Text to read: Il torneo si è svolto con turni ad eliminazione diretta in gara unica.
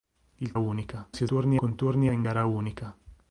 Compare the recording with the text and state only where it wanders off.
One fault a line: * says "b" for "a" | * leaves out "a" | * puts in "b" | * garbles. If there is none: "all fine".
* says "unica" for "torneo"
* says "turni" for "svolto"
* leaves out "ad eliminazione diretta"